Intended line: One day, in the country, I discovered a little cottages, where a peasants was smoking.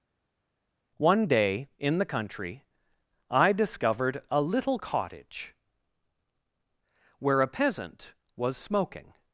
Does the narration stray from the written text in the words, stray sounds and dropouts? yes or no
yes